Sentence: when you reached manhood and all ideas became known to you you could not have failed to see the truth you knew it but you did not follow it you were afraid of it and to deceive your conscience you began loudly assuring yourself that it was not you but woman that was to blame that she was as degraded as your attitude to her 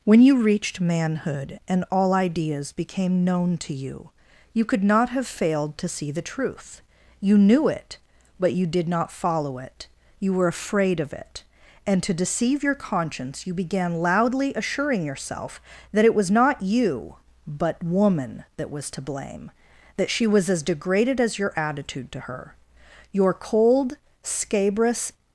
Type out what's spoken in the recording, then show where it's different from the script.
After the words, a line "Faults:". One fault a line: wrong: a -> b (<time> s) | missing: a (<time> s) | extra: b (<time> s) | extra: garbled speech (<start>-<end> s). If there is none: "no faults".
when you reached manhood and all ideas became known to you you could not have failed to see the truth you knew it but you did not follow it you were afraid of it and to deceive your conscience you began loudly assuring yourself that it was not you but woman that was to blame that she was as degraded as your attitude to her your cold scabrous
Faults:
extra: your cold scabrous (23.1 s)